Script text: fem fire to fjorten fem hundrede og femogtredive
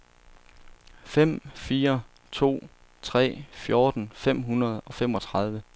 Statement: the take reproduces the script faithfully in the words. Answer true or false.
false